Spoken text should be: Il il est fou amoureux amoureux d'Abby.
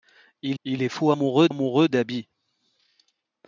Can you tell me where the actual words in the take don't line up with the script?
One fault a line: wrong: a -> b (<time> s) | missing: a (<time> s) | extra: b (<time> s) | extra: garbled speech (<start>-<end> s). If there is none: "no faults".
no faults